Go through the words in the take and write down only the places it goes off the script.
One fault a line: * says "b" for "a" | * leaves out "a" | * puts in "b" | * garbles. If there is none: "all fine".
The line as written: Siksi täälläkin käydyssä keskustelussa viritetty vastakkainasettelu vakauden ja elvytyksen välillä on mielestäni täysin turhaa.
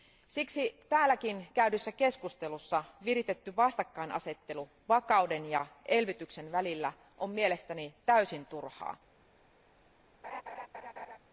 all fine